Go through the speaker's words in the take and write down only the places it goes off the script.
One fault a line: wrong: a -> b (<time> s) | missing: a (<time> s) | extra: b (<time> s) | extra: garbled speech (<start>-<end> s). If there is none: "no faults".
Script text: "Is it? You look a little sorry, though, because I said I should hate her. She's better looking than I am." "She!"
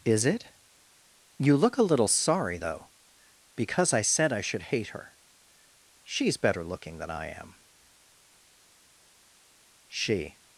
no faults